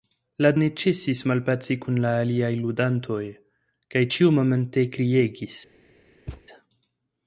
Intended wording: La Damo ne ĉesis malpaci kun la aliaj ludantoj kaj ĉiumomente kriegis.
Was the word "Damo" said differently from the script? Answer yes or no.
yes